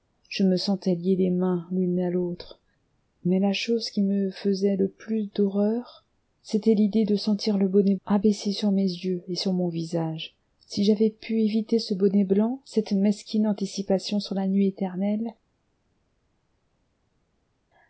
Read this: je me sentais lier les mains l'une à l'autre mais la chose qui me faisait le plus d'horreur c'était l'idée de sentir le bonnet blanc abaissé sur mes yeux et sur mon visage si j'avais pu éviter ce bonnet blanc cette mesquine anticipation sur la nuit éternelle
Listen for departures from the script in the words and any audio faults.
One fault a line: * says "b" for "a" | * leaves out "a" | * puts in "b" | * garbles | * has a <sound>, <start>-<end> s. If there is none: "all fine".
* leaves out "blanc"